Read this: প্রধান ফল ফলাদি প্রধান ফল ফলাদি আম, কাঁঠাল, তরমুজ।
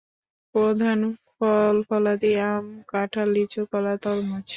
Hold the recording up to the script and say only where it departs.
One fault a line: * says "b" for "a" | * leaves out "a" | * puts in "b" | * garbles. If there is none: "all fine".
* says "আম কাঁঠাল লিচু কলা" for "প্রধান ফল ফলাদি আম কাঁঠাল"